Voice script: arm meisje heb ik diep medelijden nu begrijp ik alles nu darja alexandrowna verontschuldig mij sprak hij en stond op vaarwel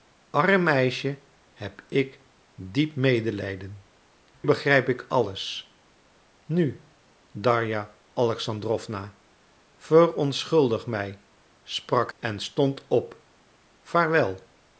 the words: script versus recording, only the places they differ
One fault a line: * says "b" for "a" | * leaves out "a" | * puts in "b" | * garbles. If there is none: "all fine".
* leaves out "nu"
* leaves out "hij"